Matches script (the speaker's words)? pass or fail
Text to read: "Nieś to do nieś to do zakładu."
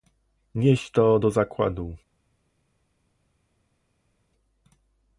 fail